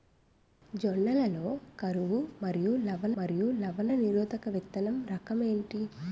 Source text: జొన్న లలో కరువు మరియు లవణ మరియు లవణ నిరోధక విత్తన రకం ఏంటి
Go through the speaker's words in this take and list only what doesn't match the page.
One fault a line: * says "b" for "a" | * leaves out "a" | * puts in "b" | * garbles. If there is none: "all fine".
all fine